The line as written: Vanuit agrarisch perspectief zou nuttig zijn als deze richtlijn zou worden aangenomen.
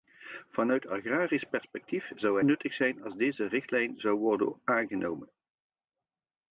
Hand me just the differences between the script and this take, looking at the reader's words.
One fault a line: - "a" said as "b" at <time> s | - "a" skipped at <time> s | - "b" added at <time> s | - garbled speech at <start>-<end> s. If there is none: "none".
none